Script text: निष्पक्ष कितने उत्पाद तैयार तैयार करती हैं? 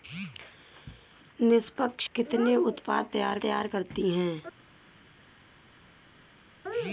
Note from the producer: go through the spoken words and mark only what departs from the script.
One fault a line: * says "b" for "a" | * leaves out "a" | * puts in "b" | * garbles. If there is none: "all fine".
all fine